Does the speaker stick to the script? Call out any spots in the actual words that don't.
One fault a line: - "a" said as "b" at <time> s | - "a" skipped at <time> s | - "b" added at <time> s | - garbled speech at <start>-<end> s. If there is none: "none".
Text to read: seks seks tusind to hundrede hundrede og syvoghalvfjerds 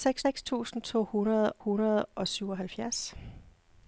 none